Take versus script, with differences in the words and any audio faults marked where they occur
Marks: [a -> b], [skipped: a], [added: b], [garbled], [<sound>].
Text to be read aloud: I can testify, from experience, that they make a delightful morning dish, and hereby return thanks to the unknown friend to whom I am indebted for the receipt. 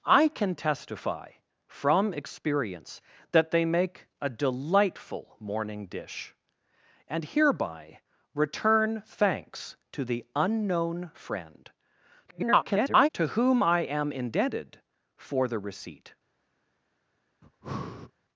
I can testify, from experience, that they make a delightful morning dish, and hereby return thanks to the unknown friend [garbled] to whom I am indebted for the receipt. [breath]